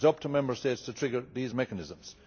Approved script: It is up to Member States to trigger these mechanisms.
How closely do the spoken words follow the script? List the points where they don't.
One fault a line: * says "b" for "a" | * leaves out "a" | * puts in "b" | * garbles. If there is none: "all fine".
all fine